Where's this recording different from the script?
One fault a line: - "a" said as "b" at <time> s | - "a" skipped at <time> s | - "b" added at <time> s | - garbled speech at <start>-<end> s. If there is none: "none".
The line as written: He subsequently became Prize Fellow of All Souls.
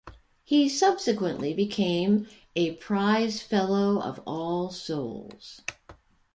- "a" added at 2.5 s